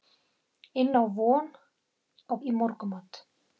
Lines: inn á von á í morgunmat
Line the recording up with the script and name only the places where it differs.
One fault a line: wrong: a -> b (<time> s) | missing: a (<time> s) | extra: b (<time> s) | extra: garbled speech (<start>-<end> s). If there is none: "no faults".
no faults